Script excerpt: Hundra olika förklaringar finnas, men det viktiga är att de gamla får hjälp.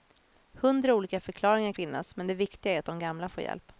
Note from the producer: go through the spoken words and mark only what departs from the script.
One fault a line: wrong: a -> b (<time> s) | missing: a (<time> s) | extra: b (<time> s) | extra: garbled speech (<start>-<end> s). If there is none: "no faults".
no faults